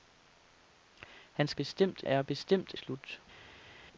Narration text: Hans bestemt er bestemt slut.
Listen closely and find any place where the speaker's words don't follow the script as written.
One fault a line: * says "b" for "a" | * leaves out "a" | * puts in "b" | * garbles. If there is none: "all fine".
all fine